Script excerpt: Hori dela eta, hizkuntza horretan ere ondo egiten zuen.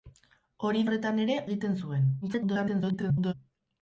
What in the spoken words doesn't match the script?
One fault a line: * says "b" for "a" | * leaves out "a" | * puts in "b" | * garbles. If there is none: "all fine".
* leaves out "dela eta hizkuntza"
* leaves out "ondo"
* garbles